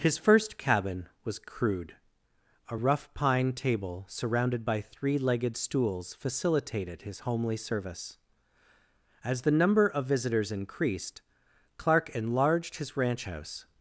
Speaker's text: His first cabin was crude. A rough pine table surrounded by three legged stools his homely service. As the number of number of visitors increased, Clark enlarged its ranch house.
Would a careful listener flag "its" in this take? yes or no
yes